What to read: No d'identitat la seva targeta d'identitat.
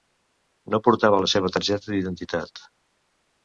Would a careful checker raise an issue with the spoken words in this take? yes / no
yes